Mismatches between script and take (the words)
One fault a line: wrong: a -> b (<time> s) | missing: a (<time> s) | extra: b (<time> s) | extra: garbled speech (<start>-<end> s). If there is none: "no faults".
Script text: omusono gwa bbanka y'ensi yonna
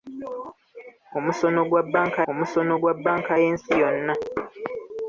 extra: omusono gwa bbanka (2.3 s)